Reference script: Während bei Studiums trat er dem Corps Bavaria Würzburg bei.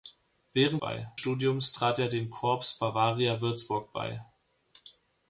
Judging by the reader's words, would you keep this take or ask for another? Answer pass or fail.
pass